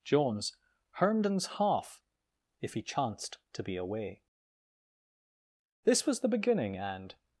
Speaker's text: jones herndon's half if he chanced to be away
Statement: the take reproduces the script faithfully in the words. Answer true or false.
false